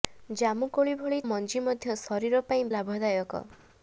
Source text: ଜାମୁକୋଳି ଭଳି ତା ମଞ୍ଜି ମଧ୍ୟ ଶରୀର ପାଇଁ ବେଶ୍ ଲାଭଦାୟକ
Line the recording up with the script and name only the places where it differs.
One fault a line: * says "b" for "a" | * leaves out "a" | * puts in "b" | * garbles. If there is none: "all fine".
* leaves out "ତା"
* leaves out "ବେଶ୍"